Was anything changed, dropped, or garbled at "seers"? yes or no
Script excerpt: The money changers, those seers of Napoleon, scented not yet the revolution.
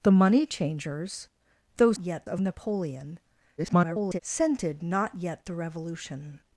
yes